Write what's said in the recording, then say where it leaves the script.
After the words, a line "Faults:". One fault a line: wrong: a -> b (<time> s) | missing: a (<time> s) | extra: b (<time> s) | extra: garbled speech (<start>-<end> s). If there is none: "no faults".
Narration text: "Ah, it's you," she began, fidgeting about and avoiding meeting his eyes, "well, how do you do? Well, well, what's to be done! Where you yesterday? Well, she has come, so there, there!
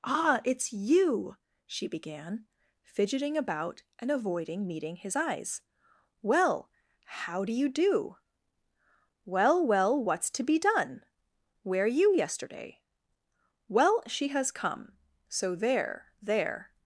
"Ah, it's you," she began, fidgeting about and avoiding meeting his eyes, "well, how do you do? Well, well, what's to be done! Where you yesterday? Well, she has come, so there, there!
Faults:
no faults